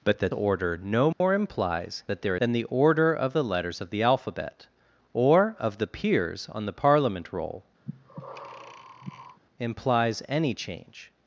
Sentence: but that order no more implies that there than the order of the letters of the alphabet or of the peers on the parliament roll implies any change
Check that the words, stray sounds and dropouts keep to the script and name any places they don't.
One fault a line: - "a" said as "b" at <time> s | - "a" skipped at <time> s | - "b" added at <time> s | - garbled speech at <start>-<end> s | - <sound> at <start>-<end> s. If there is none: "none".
- dropout at 1.1-1.2 s
- breath at 7.8-9.4 s